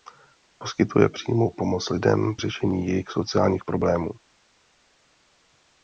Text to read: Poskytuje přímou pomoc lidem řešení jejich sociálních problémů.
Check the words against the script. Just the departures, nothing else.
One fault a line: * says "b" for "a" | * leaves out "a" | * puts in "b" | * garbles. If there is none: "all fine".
all fine